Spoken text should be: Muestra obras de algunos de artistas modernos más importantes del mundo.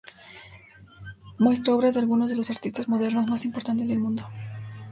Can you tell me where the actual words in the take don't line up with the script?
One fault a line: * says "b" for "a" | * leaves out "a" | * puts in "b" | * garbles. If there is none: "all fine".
* puts in "los"